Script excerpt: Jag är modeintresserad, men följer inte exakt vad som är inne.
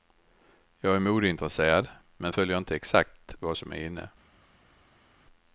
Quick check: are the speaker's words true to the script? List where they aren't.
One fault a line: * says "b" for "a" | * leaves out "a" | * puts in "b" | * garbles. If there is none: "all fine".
all fine